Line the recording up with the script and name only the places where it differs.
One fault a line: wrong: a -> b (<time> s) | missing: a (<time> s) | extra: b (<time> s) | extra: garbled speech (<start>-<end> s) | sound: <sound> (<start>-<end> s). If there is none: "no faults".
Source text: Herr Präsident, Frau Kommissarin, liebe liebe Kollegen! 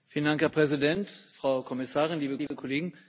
sound: dropout (2.5-2.5 s)